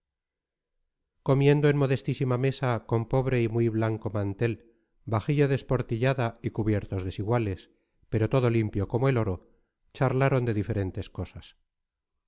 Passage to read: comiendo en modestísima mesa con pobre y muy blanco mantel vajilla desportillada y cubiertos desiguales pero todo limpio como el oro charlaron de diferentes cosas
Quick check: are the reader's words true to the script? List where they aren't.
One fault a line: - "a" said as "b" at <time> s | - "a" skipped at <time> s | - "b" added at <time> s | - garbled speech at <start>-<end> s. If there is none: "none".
none